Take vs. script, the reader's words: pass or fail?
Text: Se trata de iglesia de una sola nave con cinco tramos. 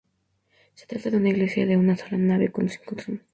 fail